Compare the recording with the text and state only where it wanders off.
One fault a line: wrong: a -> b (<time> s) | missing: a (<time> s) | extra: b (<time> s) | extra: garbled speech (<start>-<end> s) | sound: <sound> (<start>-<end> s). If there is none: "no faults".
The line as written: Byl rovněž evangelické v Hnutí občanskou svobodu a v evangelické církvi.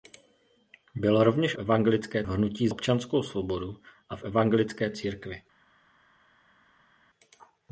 no faults